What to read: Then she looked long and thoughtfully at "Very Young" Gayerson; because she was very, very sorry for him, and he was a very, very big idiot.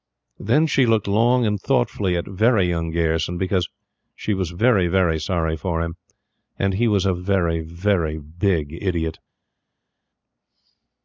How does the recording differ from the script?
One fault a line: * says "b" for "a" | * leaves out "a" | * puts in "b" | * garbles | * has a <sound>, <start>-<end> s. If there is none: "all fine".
all fine